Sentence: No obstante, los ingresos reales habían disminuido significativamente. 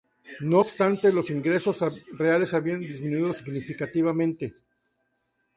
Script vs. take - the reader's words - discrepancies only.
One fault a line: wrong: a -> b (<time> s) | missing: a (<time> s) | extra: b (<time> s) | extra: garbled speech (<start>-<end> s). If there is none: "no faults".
no faults